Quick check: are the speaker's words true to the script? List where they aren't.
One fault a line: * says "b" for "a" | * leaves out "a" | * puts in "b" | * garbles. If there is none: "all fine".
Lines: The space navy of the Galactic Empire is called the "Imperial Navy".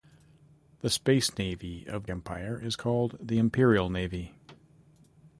* leaves out "the Galactic"